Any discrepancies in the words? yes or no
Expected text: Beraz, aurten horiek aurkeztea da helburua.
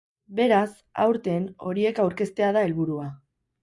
no